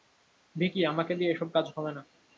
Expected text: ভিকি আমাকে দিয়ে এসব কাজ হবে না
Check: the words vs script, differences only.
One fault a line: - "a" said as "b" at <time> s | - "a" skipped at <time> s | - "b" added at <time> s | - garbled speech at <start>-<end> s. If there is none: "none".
none